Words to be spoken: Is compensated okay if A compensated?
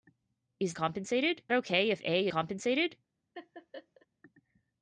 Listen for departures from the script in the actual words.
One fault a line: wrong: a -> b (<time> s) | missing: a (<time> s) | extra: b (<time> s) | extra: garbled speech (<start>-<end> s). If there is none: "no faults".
no faults